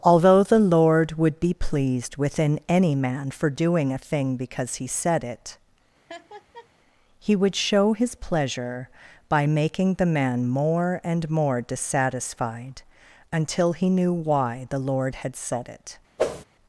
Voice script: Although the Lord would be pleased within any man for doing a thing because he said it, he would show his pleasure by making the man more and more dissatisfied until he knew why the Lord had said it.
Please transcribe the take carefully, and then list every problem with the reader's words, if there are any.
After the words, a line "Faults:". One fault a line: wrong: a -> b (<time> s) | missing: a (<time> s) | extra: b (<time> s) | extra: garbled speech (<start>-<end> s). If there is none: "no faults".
Although the Lord would be pleased within any man for doing a thing because he said it, he would show his pleasure by making the man more and more dissatisfied until he knew why the Lord had said it.
Faults:
no faults